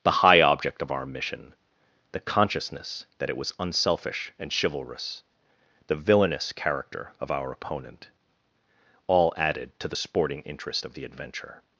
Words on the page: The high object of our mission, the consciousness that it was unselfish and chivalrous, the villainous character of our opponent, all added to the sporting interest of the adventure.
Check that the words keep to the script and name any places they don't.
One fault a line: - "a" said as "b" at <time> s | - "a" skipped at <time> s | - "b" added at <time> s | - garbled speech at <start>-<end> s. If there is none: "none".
none